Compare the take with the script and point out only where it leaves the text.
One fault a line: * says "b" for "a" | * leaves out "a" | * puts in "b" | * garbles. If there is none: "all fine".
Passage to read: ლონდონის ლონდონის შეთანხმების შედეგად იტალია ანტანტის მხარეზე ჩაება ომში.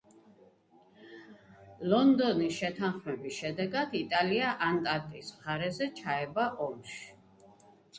* leaves out "ლონდონის"